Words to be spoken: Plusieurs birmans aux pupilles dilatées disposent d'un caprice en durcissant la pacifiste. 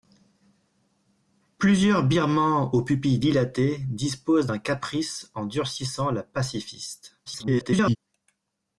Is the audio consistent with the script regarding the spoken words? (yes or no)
no